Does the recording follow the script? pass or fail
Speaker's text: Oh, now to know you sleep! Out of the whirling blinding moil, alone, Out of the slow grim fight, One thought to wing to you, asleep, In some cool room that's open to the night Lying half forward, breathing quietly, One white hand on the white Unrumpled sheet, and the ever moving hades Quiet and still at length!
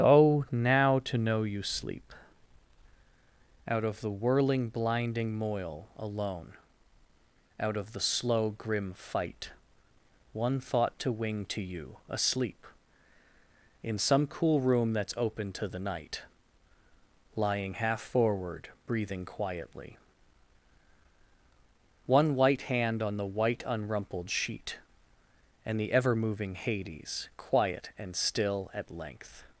pass